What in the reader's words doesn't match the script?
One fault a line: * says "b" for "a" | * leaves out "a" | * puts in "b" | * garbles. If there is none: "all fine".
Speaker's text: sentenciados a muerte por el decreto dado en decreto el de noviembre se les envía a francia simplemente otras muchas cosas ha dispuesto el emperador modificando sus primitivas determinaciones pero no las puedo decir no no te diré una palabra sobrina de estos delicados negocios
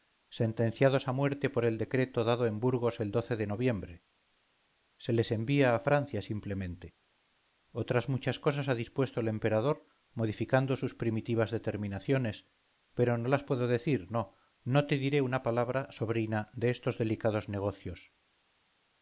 * says "burgos" for "decreto"